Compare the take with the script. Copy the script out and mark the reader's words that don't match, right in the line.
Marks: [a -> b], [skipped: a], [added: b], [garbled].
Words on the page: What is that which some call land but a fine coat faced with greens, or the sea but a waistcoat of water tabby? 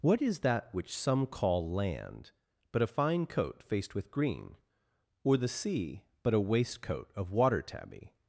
What is that which some call land but a fine coat faced with [greens, -> green] or the sea but a waistcoat of water tabby?